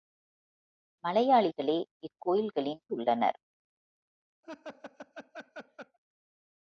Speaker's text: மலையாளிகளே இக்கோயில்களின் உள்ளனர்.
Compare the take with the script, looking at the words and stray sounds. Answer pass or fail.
fail